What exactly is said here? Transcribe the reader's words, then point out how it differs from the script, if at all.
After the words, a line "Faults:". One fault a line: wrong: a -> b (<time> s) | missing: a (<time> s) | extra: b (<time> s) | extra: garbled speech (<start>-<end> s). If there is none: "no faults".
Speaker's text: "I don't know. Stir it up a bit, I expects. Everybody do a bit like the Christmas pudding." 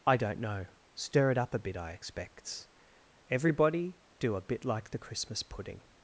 "I don't know. Stir it up a bit, I expects. Everybody do a bit like the Christmas pudding."
Faults:
no faults